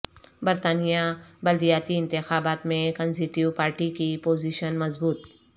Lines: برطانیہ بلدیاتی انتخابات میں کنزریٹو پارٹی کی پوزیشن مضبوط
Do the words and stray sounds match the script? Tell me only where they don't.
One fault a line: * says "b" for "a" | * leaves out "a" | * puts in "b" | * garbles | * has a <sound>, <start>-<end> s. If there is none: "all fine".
all fine